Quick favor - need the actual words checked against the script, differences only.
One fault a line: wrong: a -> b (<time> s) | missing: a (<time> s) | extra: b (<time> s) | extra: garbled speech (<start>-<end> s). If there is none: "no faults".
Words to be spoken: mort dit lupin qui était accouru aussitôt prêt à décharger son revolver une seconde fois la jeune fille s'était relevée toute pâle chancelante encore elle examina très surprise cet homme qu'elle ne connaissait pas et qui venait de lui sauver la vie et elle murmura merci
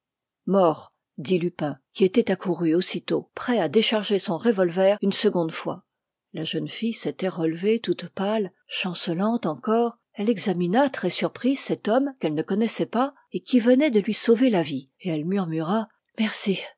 no faults